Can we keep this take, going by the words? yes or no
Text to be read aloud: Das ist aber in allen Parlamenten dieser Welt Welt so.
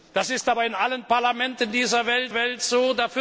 yes